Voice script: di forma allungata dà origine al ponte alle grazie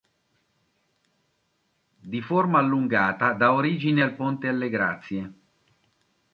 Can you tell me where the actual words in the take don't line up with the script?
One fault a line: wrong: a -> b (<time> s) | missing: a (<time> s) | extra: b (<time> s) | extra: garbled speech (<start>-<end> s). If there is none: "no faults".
no faults